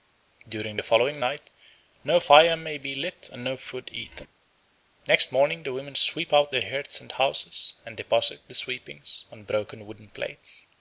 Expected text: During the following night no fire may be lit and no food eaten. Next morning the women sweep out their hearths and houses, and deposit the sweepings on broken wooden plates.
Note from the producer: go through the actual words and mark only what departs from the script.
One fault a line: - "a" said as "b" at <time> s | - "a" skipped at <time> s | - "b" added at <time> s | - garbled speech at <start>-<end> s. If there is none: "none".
none